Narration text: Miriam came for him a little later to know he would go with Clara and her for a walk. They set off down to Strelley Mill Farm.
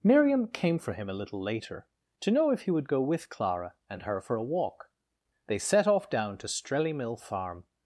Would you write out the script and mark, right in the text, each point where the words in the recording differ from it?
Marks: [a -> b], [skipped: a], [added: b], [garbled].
Miriam came for him a little later to know [added: if] he would go with Clara and her for a walk. They set off down to Strelley Mill Farm.